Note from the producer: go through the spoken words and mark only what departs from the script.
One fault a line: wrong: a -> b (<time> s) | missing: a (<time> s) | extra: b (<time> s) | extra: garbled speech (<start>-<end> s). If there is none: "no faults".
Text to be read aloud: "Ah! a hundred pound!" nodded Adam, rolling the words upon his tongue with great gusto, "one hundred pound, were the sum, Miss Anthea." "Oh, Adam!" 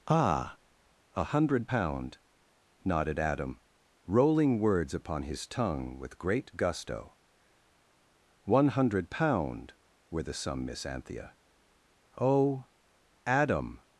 missing: the (4.6 s)